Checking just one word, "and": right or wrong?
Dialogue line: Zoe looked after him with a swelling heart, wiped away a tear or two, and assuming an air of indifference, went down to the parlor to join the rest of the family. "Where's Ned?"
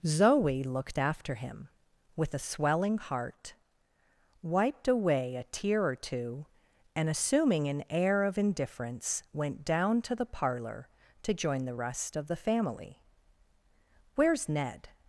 right